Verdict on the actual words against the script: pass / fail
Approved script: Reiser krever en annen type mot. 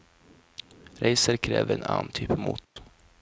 pass